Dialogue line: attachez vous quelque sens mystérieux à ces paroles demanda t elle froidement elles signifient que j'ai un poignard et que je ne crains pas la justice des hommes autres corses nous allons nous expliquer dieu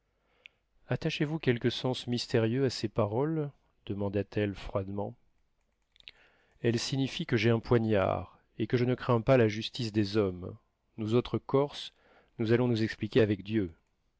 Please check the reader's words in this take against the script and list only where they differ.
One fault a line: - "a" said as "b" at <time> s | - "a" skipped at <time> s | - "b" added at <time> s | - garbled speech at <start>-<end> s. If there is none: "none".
- "nous" added at 11.0 s
- "avec" added at 13.2 s